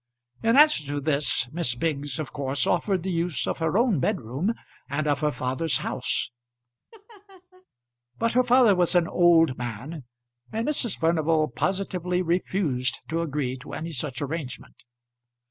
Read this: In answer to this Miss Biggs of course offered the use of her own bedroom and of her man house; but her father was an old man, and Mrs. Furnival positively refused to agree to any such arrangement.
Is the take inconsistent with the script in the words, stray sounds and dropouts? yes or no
yes